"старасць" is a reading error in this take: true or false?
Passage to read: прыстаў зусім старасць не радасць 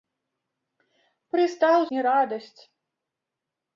true